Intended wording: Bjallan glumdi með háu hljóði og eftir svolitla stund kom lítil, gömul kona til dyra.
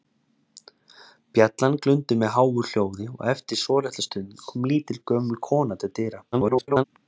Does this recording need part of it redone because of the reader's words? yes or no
yes